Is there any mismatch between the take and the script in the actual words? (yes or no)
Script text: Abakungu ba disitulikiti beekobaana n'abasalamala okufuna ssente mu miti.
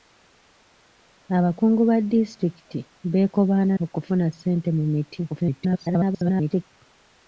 yes